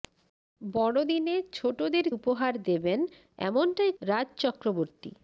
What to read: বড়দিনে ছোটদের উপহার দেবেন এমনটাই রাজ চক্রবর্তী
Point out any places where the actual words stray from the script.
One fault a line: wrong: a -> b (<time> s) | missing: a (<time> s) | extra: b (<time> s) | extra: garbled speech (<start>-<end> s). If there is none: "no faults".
no faults